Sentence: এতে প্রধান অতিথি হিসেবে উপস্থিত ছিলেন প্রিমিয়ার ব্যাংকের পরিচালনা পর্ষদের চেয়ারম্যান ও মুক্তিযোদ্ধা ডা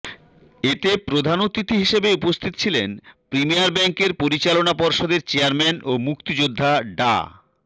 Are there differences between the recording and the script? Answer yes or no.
no